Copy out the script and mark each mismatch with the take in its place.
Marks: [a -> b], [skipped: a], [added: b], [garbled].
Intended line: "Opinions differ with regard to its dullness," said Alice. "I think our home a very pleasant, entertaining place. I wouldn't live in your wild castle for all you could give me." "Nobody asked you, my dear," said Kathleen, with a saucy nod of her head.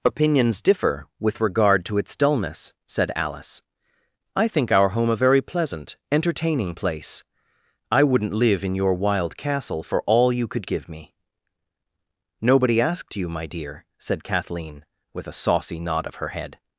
"Opinions differ with regard to its dullness," said Alice. "I think our home a very pleasant, entertaining place. I wouldn't live in your wild castle for all you could give me." "Nobody asked you, my dear," said Kathleen, with a saucy nod of her head.